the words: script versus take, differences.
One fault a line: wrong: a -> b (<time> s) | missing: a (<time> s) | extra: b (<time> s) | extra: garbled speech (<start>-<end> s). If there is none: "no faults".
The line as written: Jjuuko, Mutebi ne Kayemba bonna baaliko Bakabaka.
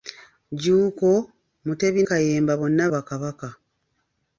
missing: ne (2.0 s)
missing: baaliko (2.8 s)